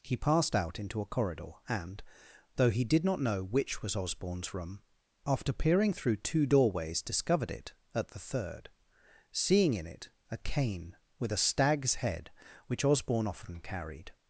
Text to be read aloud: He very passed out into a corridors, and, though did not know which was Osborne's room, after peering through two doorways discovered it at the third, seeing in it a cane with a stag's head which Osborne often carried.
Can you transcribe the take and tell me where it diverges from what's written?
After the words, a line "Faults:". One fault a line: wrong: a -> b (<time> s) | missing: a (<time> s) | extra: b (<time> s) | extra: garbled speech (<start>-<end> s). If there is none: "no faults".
He passed out into a corridor, and, though he did not know which was Osborne's room, after peering through two doorways discovered it at the third, seeing in it a cane with a stag's head which Osborne often carried.
Faults:
missing: very (0.2 s)
wrong: corridors -> corridor (1.1 s)
extra: he (2.7 s)